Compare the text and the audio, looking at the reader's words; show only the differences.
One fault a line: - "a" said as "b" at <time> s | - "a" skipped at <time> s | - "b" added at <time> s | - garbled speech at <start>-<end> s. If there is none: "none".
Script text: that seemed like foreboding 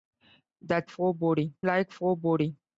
- "seemed" said as "foreboding" at 0.9 s